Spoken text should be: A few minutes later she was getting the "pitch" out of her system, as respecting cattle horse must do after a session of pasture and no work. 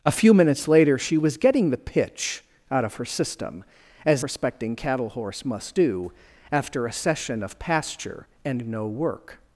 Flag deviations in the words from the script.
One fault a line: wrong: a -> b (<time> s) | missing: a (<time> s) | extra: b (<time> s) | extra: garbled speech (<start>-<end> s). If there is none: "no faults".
no faults